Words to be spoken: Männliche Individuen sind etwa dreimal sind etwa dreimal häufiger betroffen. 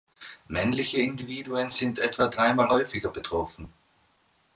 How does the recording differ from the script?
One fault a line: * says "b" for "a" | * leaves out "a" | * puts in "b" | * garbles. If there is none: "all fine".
* leaves out "sind etwa dreimal"